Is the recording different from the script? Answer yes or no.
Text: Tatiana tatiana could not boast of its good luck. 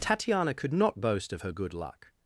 yes